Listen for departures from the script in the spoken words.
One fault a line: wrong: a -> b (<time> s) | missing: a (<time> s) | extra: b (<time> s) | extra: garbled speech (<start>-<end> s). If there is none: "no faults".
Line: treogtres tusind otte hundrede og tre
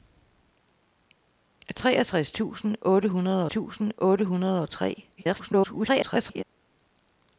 extra: tusind otte hundrede (3.5 s)
extra: garbled speech (5.2-6.4 s)